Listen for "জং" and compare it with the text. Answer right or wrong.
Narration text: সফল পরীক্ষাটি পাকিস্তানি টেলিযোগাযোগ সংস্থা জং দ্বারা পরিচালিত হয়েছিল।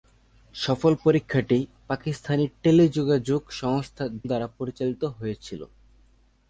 wrong